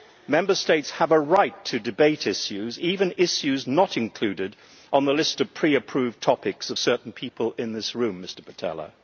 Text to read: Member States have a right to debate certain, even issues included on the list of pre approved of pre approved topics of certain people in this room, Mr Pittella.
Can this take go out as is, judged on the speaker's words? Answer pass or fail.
fail